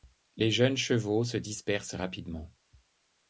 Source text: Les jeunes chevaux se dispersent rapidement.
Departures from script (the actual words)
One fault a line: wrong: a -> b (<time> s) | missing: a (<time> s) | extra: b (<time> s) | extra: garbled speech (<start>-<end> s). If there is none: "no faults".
no faults